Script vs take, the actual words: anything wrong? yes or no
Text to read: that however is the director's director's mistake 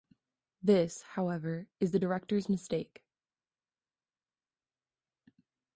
yes